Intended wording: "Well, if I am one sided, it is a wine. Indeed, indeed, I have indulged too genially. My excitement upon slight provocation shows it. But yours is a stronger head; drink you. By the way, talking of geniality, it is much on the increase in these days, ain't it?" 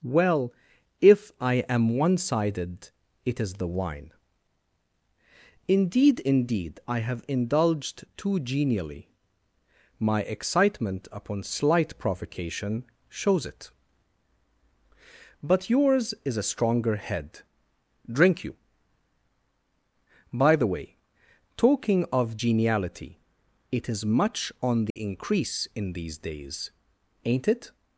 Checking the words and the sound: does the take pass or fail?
fail